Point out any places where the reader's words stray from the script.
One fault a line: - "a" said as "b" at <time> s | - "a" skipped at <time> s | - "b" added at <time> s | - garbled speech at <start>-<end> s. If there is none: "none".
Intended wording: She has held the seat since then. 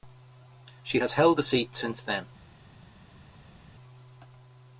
none